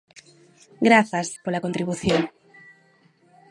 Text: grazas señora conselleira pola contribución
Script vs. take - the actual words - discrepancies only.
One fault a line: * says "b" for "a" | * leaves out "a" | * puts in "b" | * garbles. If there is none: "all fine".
* leaves out "señora conselleira"